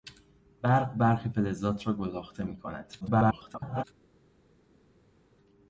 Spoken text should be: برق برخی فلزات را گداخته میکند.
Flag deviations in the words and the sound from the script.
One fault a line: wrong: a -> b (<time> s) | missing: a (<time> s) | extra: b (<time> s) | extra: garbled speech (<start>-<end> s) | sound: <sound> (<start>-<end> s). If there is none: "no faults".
extra: garbled speech (3.0-3.8 s)